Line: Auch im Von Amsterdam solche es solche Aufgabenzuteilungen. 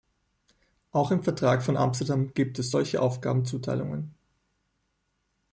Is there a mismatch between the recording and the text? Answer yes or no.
yes